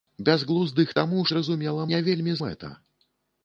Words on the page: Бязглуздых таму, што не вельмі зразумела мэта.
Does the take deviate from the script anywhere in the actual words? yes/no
yes